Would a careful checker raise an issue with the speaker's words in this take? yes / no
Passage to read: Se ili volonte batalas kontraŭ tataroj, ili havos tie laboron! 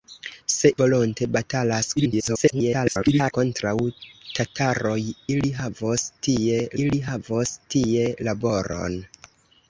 yes